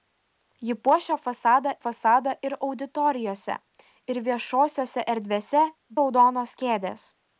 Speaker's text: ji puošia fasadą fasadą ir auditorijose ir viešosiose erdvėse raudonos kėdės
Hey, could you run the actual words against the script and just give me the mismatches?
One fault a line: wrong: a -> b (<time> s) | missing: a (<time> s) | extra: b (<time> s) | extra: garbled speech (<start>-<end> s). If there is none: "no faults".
no faults